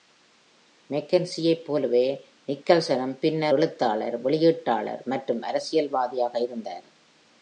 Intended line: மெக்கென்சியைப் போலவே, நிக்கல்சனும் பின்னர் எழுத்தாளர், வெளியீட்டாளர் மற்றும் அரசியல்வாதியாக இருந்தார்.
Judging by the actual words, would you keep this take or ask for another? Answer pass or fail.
pass